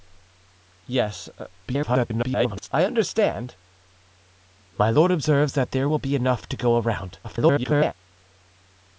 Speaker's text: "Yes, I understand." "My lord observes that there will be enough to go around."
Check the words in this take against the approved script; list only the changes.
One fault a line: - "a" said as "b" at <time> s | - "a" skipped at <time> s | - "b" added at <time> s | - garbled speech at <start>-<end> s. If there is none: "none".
- garbled speech at 1.7-2.7 s
- garbled speech at 7.2-7.9 s